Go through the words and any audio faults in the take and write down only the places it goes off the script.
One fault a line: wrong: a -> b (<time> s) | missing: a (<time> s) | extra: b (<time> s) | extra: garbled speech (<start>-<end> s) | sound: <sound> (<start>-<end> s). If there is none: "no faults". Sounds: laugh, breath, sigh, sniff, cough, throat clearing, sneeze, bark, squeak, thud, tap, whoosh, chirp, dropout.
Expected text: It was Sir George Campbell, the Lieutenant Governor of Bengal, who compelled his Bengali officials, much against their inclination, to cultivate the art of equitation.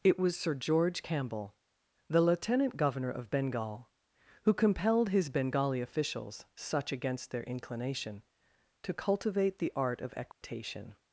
wrong: much -> such (6.5 s)
sound: dropout (10.3-10.4 s)